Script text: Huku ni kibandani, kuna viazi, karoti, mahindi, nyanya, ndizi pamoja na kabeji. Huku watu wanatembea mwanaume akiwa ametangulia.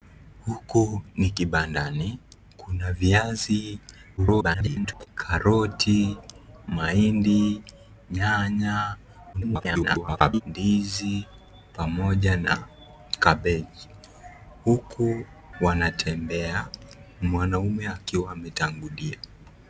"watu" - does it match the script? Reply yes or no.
no